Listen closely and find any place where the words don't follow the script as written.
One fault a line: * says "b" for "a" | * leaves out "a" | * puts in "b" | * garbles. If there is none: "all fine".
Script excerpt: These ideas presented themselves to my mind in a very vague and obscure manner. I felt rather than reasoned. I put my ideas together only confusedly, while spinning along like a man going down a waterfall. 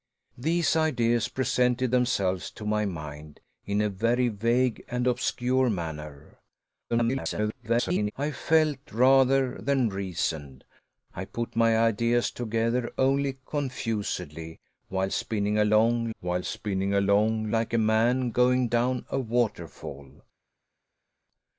* garbles
* puts in "while spinning along"